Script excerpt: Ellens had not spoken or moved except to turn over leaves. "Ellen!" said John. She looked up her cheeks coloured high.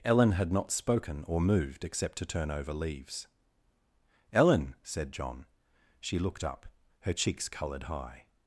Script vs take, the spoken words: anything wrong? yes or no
yes